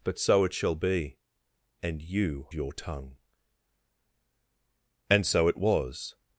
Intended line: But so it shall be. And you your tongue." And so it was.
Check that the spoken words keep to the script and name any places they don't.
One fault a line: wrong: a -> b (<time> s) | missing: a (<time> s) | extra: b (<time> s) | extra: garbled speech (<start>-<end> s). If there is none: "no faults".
no faults